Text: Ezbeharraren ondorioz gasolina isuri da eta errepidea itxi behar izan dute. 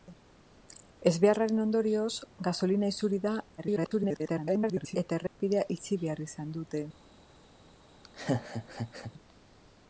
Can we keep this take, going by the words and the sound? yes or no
no